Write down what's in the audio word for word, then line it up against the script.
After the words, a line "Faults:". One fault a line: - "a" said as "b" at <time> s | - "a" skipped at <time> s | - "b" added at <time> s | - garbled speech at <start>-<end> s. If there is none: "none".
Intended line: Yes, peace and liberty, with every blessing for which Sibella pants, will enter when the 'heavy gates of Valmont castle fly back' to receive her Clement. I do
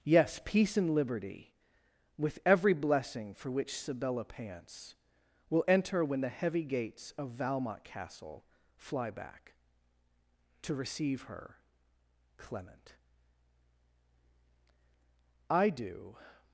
Yes, peace and liberty, with every blessing for which Sibella pants, will enter when the 'heavy gates of Valmont castle fly back' to receive her Clement. I do
Faults:
none